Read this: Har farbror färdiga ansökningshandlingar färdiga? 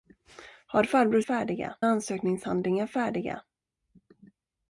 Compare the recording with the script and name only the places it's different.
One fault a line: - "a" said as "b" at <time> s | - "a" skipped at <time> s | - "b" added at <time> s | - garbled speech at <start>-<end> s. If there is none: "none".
none